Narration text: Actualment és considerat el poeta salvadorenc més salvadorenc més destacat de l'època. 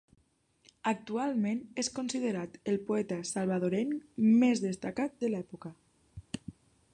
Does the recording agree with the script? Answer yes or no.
no